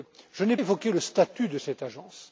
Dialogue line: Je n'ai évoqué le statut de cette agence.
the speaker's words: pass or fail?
pass